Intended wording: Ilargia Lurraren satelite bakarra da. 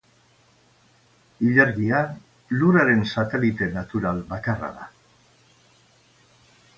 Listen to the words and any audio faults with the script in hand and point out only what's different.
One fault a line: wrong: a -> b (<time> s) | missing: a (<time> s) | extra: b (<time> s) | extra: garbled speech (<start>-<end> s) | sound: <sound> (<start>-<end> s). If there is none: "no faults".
extra: natural (3.8 s)